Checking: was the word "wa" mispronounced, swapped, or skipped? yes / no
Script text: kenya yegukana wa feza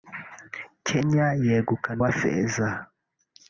no